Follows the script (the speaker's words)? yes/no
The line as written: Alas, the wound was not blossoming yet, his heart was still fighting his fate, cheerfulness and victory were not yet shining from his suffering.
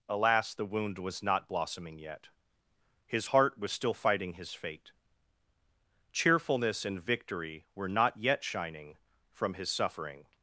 yes